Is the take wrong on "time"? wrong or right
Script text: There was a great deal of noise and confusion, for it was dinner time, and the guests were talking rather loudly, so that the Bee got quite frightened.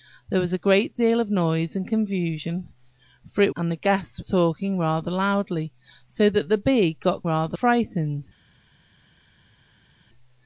wrong